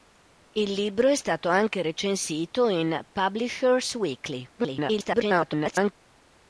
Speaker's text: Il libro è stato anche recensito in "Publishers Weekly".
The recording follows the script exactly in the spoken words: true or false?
false